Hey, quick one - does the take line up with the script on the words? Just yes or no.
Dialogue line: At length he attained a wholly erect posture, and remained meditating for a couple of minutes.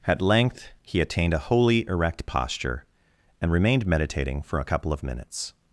yes